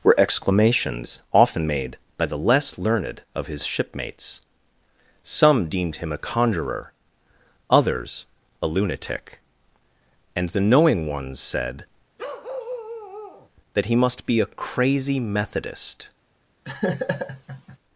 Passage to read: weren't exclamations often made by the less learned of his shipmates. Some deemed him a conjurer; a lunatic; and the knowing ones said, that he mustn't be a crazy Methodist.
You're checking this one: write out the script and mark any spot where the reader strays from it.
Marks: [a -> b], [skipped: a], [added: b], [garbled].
[weren't -> were] exclamations often made by the less learned of his shipmates. Some deemed him a conjurer; [added: others] a lunatic; and the knowing ones said, that he [mustn't -> must] be a crazy Methodist.